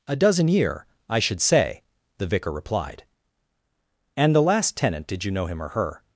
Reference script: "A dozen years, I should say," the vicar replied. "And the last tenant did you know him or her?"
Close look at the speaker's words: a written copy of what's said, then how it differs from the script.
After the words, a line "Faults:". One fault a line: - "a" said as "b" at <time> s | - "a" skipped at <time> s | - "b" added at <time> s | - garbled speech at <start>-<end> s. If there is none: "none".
"A dozen year, I should say," the vicar replied. "And the last tenant did you know him or her?"
Faults:
- "years" said as "year" at 0.5 s